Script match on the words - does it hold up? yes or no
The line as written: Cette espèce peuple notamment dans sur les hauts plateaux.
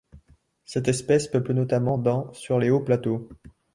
yes